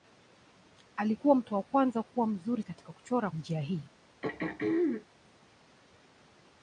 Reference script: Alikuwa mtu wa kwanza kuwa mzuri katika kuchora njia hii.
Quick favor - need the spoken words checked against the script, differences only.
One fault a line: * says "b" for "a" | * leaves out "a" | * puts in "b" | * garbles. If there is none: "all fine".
all fine